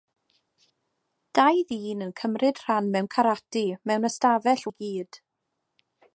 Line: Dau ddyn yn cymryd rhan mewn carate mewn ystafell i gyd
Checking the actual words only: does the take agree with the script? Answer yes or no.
yes